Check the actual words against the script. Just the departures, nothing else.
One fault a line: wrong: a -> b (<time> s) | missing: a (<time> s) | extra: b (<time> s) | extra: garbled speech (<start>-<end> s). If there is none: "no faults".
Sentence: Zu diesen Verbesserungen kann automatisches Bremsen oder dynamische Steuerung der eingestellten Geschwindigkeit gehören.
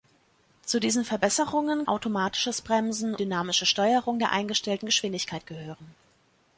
missing: kann (1.9 s)
missing: oder (3.2 s)